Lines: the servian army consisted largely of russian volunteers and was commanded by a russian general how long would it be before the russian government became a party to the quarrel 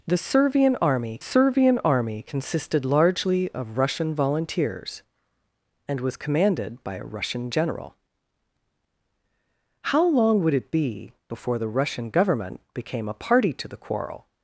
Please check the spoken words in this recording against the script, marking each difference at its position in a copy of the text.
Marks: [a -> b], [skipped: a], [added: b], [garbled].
the servian army [added: servian army] consisted largely of russian volunteers and was commanded by a russian general how long would it be before the russian government became a party to the quarrel